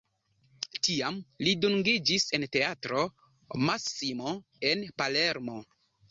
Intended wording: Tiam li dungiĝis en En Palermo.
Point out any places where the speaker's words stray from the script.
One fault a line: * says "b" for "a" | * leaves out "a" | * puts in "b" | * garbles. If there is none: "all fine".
* puts in "Teatro Massimo"